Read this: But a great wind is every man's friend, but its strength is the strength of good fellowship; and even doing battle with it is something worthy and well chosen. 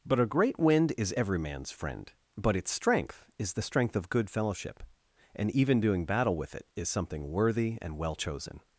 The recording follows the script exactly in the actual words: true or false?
true